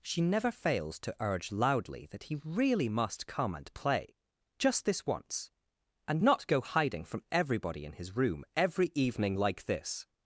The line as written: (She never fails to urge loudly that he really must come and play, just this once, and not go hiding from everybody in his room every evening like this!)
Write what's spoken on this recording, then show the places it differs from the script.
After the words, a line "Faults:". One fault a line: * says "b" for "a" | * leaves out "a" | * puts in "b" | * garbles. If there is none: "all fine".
(She never fails to urge loudly that he really must come and play, just this once, and not go hiding from everybody in his room every evening like this!)
Faults:
all fine